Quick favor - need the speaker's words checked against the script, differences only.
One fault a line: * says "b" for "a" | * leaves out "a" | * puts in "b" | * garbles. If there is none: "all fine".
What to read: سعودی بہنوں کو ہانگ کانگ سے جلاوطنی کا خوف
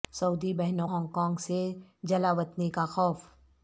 * leaves out "کو"